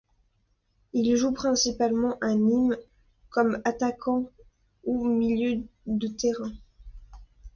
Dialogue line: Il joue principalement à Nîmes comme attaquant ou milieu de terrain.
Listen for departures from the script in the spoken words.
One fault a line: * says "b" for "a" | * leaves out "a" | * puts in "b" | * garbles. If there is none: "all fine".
all fine